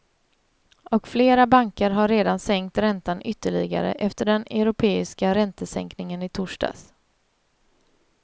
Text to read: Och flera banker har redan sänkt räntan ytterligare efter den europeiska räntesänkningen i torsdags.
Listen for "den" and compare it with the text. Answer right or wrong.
right